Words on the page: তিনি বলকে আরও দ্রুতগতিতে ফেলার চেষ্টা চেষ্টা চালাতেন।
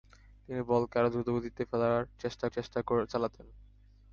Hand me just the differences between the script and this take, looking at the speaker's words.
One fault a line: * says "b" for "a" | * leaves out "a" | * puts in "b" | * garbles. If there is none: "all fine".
all fine